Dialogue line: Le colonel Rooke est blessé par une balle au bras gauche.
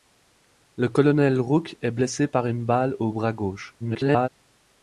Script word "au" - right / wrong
right